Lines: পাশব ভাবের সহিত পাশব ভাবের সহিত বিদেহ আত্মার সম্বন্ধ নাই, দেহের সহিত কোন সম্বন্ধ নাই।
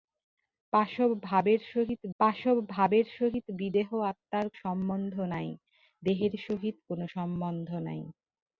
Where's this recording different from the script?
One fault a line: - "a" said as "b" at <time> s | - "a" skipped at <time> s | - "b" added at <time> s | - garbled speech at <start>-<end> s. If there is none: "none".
none